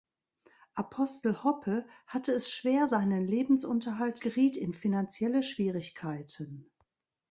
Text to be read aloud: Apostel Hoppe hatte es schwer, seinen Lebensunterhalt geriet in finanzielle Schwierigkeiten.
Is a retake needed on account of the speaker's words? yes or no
no